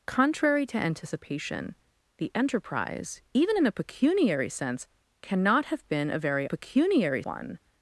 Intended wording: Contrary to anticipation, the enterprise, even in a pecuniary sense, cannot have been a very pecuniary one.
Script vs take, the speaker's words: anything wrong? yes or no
no